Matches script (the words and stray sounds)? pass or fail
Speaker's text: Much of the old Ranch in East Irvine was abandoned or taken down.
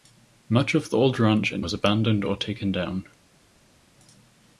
fail